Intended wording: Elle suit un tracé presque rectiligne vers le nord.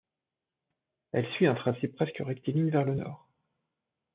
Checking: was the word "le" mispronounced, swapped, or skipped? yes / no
no